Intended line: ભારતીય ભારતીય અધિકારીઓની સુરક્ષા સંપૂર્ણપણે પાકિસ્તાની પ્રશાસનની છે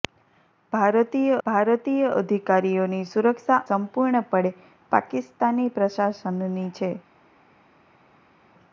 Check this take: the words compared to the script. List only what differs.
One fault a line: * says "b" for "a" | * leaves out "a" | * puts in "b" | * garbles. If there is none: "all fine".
all fine